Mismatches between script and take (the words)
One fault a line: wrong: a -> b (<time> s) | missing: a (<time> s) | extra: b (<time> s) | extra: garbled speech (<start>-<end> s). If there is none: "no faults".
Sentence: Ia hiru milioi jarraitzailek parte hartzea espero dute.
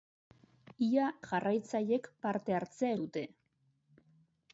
missing: hiru milioi (1.1 s)
missing: espero (2.9 s)